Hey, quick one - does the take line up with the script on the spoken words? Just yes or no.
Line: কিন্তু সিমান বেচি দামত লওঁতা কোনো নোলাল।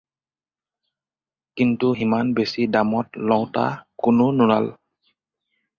yes